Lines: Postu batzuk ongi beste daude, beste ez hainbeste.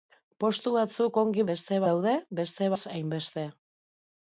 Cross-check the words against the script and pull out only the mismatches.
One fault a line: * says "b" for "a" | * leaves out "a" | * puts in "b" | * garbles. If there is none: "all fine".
all fine